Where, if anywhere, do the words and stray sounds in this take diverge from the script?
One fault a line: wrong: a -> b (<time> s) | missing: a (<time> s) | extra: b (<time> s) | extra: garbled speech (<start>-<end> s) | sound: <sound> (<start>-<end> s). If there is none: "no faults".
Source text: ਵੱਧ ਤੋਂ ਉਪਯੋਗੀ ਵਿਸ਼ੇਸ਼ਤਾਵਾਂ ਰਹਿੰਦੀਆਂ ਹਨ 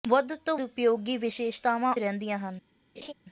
sound: laugh (3.0-3.1 s)